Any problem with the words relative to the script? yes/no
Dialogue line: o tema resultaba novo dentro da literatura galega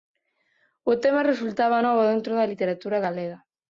no